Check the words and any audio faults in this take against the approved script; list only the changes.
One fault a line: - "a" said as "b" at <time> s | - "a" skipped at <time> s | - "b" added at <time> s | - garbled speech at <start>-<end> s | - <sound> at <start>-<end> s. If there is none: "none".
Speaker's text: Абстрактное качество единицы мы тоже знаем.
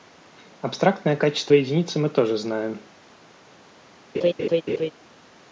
- laugh at 4.1-4.9 s